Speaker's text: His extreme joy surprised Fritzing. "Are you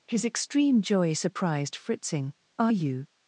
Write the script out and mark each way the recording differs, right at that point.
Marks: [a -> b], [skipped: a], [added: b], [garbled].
His extreme joy surprised Fritzing. "Are you